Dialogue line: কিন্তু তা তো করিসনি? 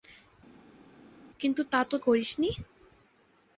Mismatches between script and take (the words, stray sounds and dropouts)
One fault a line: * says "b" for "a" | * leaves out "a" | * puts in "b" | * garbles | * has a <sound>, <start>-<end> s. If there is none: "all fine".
all fine